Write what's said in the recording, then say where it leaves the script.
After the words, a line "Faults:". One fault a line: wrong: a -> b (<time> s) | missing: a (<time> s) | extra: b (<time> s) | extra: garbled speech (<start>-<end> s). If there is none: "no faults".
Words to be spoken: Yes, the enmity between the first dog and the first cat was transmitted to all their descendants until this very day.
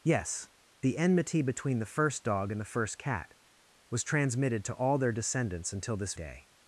Yes, the enmity between the first dog and the first cat was transmitted to all their descendants until this day.
Faults:
missing: very (6.2 s)